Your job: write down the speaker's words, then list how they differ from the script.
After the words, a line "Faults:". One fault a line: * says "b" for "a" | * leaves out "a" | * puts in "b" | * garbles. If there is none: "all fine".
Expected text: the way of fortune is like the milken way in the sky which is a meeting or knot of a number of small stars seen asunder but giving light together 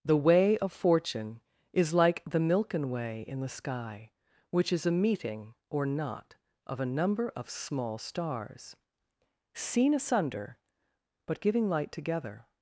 the way of fortune is like the milken way in the sky which is a meeting or knot of a number of small stars seen asunder but giving light together
Faults:
all fine